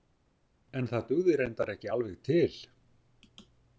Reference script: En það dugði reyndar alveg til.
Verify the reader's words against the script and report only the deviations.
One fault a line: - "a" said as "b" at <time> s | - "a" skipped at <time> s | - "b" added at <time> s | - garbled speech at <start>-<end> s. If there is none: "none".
- "ekki" added at 1.8 s